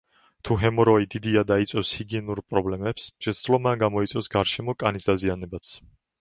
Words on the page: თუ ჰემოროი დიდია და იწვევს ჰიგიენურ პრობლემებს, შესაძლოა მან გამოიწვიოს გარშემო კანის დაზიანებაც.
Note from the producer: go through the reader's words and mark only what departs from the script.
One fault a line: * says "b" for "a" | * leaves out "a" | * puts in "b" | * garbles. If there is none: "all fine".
all fine